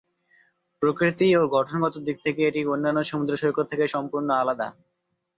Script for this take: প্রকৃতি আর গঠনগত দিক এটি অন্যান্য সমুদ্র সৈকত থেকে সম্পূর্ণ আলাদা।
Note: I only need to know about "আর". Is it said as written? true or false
false